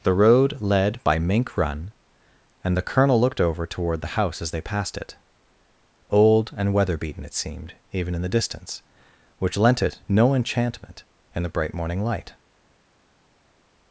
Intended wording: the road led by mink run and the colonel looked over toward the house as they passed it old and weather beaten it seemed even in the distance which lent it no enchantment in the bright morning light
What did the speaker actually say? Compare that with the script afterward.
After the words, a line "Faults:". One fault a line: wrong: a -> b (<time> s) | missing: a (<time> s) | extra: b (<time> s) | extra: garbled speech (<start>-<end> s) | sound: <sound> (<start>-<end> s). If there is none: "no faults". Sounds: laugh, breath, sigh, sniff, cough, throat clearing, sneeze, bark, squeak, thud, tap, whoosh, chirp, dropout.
the road led by mink run and the colonel looked over toward the house as they passed it old and weather beaten it seemed even in the distance which lent it no enchantment in the bright morning light
Faults:
no faults